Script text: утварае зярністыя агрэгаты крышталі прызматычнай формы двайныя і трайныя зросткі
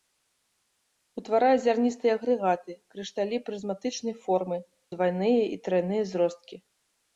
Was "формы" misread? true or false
false